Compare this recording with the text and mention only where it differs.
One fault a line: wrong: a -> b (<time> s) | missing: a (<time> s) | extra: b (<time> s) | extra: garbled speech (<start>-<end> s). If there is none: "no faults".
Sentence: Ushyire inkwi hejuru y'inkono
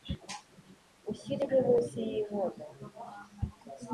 wrong: hejuru -> munsi (1.7 s)